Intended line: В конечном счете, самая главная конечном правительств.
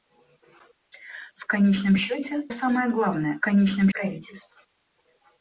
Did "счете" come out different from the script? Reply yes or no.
no